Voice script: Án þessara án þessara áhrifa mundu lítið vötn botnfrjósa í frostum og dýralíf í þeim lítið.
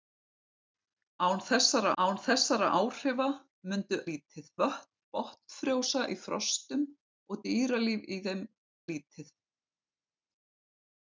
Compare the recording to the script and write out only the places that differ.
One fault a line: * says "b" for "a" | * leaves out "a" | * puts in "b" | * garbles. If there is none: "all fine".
all fine